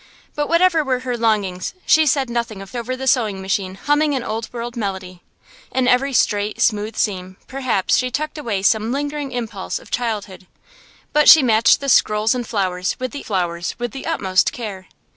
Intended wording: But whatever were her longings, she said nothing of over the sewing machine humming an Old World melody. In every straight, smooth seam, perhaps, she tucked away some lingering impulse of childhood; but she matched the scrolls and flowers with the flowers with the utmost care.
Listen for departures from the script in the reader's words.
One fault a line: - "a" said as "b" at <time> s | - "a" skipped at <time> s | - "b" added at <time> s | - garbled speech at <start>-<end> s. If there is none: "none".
none